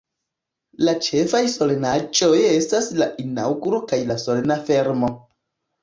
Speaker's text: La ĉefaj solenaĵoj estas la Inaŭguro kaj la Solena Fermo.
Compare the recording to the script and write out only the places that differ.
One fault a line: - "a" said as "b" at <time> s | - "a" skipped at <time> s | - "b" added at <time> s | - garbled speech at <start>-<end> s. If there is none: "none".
none